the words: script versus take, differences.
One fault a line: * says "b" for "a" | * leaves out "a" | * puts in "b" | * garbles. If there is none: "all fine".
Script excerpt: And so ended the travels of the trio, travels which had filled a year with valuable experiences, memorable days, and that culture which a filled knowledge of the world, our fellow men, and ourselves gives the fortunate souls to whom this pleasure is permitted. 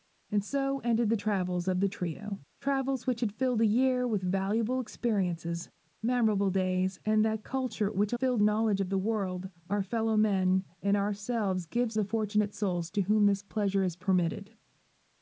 all fine